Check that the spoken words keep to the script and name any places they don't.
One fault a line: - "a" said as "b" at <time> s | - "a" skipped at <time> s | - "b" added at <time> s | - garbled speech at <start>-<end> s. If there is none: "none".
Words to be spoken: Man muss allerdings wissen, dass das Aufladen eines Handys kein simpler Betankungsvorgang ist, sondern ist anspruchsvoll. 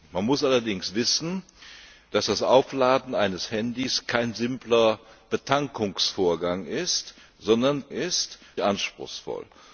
none